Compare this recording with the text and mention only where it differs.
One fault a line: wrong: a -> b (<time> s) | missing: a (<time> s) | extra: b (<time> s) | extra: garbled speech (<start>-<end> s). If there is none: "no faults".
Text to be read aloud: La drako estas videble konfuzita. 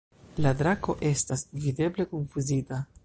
no faults